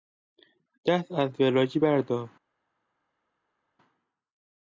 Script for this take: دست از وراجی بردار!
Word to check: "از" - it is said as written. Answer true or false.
true